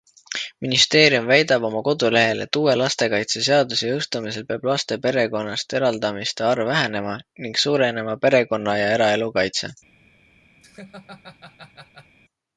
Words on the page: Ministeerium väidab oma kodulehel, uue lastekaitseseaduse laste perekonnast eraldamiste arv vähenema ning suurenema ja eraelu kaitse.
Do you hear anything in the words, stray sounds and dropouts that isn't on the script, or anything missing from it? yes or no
yes